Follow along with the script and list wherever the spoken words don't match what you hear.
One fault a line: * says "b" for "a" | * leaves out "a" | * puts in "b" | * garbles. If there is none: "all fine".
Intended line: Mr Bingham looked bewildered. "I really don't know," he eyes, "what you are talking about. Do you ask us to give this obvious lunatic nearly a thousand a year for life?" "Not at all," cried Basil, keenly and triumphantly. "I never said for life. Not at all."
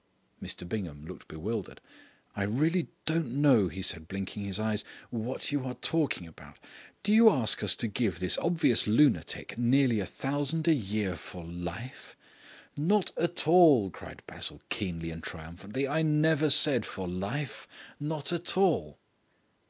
* puts in "said blinking his"